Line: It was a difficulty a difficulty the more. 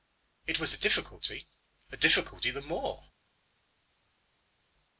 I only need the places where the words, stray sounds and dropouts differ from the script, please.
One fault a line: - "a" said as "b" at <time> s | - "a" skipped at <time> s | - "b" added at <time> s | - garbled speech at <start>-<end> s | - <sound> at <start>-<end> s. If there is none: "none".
none